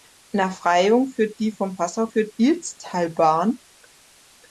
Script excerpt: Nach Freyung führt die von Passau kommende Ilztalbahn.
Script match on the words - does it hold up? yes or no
no